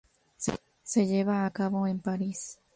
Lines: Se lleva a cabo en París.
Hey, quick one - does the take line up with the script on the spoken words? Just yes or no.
yes